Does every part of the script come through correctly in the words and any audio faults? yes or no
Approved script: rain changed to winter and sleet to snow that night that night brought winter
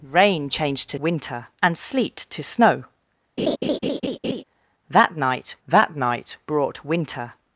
no